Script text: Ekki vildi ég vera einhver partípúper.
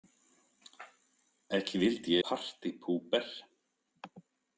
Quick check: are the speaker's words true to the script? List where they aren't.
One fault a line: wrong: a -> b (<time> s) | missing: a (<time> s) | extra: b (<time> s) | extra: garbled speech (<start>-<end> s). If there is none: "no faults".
missing: ég vera einhver (2.2 s)